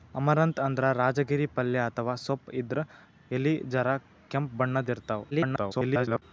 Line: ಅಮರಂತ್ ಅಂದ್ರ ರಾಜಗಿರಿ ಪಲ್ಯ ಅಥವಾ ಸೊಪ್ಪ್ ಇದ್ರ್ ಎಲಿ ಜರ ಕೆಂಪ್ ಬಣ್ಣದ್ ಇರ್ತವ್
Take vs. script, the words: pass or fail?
fail